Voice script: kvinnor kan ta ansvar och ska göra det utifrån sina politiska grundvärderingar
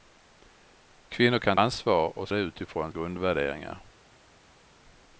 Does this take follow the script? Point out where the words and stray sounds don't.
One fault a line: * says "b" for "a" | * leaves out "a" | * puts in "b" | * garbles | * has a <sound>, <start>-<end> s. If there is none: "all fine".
* leaves out "ta"
* leaves out "ska göra"
* leaves out "sina politiska"